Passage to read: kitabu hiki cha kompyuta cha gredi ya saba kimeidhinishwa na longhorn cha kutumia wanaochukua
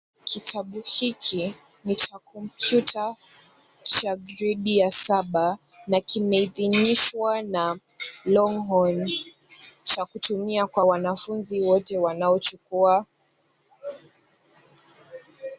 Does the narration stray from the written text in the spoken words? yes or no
yes